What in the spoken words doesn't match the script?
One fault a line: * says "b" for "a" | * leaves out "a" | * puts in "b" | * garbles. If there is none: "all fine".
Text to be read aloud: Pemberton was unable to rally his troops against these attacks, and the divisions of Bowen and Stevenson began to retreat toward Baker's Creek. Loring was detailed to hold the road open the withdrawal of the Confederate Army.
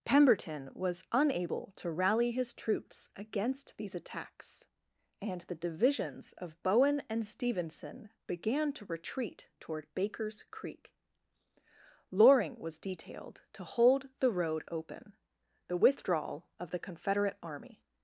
all fine